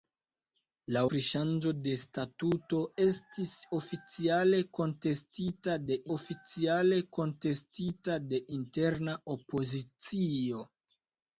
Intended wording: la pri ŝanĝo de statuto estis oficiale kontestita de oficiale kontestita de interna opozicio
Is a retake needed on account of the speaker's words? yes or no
no